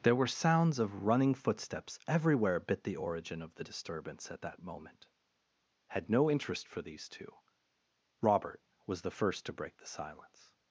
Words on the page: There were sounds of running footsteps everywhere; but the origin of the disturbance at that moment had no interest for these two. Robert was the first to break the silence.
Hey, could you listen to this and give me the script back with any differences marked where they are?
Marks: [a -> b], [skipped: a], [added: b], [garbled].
There were sounds of running footsteps everywhere; [but -> bit] the origin of the disturbance at that moment had no interest for these two. Robert was the first to break the silence.